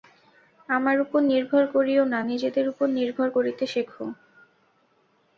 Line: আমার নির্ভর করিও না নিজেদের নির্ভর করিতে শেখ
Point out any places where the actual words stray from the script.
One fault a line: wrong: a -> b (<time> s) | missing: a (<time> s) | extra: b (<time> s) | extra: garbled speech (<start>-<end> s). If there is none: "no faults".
extra: উপর (1.0 s)
extra: উপর (2.7 s)